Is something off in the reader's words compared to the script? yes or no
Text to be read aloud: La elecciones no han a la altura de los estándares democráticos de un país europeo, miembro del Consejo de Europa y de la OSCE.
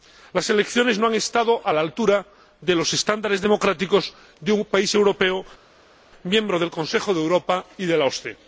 yes